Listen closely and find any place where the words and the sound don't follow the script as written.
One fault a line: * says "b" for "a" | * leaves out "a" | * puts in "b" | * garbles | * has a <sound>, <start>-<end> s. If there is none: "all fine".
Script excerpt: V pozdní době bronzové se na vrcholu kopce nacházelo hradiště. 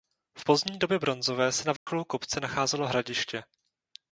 * has a dropout, 1.8-1.9 s